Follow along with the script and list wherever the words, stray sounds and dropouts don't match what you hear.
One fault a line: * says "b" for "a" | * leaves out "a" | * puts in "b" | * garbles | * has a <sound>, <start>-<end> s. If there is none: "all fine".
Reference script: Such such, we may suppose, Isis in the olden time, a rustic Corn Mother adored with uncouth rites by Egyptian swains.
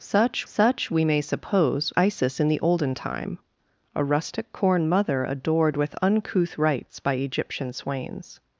all fine